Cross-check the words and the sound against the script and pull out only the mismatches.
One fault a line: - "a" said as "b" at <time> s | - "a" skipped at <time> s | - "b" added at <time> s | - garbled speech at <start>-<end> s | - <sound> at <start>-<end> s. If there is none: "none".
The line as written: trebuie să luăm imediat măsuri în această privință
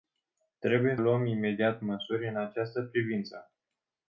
- "să" skipped at 1.0 s